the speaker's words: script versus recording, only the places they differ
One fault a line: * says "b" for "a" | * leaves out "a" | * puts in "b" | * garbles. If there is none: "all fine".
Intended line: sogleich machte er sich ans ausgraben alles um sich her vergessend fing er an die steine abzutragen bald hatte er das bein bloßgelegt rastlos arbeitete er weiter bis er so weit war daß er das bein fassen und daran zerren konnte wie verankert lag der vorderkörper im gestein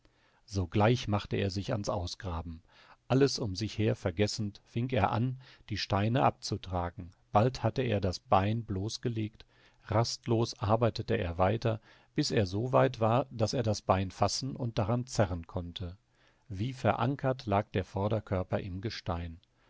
all fine